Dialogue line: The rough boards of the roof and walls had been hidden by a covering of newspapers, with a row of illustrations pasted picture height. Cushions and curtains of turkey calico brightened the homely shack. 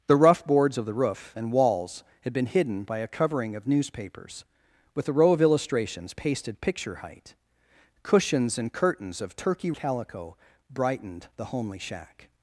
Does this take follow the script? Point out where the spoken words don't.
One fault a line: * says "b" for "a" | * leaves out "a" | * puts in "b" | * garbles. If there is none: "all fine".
all fine